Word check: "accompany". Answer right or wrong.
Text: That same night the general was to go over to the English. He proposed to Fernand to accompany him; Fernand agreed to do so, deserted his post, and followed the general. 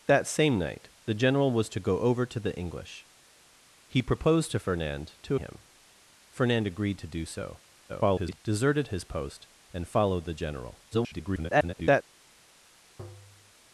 wrong